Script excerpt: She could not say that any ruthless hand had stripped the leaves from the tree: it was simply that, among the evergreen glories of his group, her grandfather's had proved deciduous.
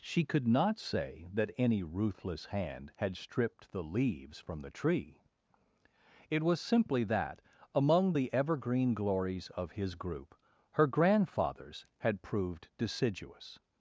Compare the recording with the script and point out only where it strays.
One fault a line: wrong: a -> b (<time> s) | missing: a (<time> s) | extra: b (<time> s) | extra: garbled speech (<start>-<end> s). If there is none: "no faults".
no faults